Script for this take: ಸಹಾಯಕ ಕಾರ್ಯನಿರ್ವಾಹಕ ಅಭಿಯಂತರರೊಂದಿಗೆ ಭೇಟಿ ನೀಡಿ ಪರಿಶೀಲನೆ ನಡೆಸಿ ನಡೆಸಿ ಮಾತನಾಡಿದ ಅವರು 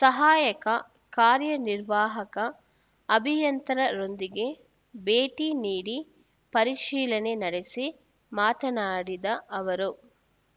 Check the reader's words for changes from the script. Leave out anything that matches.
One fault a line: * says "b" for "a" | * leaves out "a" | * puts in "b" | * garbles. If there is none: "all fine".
* leaves out "ನಡೆಸಿ"